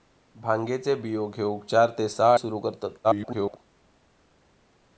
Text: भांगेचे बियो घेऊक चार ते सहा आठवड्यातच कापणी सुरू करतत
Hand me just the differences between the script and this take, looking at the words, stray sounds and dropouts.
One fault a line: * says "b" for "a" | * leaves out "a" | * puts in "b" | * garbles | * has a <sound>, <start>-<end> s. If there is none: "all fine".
* leaves out "आठवड्यातच कापणी"
* garbles